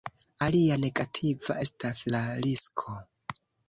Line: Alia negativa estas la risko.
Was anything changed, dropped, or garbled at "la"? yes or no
no